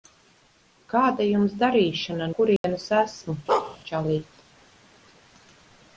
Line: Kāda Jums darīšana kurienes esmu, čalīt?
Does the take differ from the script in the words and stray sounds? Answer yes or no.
yes